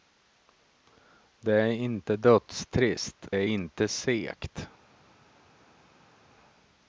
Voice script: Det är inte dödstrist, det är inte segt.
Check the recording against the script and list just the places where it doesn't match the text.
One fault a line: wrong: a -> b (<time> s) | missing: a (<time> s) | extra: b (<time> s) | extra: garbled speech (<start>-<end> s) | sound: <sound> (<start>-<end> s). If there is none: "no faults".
missing: det (3.3 s)